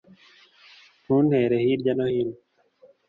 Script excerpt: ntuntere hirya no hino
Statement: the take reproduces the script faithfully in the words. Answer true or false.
true